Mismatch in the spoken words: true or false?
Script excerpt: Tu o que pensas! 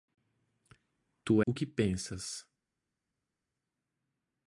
false